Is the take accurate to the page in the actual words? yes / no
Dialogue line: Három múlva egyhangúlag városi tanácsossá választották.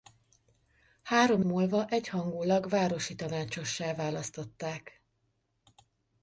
yes